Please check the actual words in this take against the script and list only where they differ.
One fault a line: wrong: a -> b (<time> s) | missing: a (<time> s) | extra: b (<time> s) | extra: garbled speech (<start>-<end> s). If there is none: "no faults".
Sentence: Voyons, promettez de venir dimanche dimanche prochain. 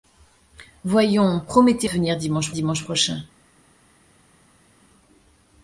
no faults